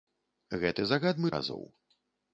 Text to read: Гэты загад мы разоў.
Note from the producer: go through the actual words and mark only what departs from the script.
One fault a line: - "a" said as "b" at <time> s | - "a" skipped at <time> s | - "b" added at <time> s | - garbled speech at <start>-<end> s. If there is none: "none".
none